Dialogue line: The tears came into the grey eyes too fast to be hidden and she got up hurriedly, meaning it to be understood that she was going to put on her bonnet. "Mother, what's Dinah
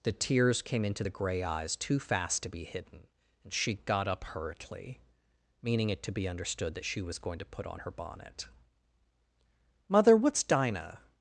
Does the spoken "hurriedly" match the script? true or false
true